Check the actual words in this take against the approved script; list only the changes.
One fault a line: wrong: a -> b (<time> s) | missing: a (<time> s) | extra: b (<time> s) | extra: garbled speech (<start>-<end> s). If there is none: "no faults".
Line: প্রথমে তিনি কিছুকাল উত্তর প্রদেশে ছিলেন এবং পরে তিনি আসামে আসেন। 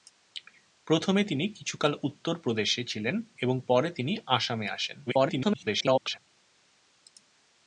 extra: garbled speech (5.1-6.2 s)